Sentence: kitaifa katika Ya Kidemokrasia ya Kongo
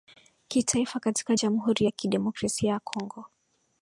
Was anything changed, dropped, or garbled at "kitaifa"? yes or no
no